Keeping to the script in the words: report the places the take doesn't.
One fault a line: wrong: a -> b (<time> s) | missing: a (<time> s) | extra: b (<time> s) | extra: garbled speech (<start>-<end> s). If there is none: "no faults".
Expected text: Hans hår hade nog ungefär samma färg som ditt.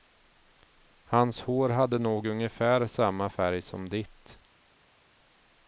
no faults